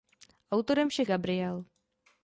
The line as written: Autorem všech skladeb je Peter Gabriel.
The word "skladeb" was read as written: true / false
false